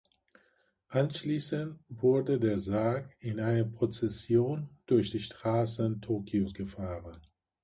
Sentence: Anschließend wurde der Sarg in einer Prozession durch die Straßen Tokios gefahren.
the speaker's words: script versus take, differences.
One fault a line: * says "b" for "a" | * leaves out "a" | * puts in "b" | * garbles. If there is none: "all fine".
all fine